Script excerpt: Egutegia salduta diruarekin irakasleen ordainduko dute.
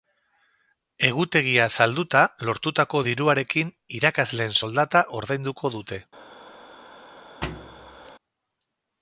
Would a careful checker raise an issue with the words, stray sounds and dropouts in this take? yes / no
yes